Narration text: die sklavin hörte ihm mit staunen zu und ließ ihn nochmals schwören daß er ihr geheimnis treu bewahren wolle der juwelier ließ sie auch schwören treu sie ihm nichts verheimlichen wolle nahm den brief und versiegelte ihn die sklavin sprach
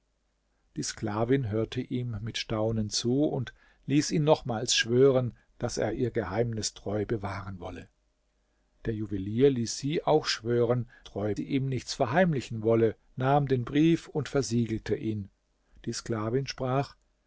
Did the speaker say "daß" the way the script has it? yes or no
yes